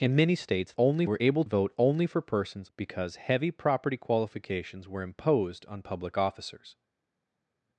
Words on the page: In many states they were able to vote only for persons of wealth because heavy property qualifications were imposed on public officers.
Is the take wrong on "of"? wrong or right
wrong